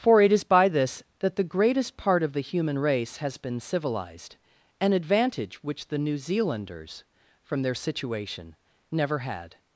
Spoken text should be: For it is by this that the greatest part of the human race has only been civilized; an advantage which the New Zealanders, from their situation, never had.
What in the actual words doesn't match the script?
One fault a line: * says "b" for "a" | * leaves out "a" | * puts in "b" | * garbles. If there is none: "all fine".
* leaves out "only"